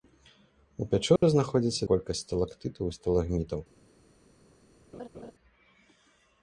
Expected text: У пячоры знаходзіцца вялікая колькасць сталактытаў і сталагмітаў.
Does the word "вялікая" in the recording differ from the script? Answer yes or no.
yes